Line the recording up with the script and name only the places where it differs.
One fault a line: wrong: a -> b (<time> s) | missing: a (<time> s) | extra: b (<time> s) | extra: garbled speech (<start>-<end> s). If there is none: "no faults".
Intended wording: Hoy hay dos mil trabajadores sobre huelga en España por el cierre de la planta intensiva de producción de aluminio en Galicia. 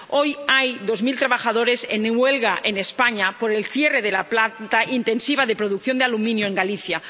wrong: sobre -> en (1.9 s)